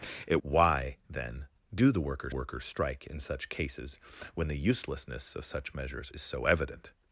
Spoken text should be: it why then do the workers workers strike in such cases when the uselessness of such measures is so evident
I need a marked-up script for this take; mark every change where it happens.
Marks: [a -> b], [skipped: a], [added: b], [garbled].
it why then do the workers workers strike in such cases when the uselessness of such measures is so evident